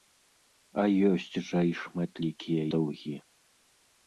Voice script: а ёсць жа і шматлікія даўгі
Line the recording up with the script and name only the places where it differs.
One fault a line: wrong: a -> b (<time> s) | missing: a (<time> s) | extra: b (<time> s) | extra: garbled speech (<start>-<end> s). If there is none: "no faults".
no faults